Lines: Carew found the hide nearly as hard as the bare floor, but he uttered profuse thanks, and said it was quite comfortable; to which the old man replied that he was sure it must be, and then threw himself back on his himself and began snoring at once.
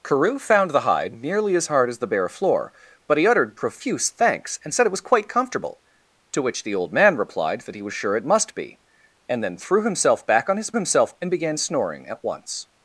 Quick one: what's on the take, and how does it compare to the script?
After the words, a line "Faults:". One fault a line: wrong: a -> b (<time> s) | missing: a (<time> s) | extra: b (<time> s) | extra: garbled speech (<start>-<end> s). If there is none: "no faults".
Carew found the hide nearly as hard as the bare floor, but he uttered profuse thanks, and said it was quite comfortable; to which the old man replied that he was sure it must be, and then threw himself back on his himself and began snoring at once.
Faults:
no faults